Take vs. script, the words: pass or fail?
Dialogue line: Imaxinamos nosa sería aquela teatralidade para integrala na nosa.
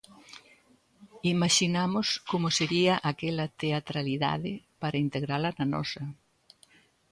fail